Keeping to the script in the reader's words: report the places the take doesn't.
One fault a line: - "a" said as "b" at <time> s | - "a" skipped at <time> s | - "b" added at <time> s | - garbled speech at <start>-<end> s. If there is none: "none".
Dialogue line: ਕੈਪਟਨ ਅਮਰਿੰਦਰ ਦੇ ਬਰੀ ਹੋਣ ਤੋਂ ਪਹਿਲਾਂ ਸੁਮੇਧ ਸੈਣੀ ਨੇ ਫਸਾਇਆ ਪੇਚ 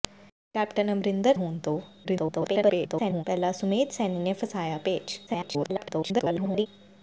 - "ਦੇ ਬਰੀ" skipped at 1.4 s
- garbled speech at 2.0-3.2 s
- garbled speech at 5.3-6.7 s